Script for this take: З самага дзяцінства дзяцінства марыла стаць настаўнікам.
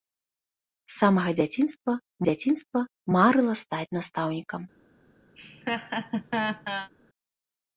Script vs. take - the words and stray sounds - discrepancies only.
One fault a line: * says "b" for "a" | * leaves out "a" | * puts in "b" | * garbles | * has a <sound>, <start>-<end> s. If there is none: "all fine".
* has a laugh, 5.3-6.9 s